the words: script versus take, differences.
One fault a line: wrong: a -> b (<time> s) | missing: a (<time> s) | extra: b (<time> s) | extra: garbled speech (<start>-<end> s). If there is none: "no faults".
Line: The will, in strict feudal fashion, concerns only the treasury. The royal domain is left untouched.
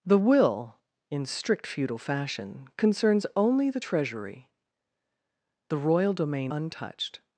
missing: is left (6.5 s)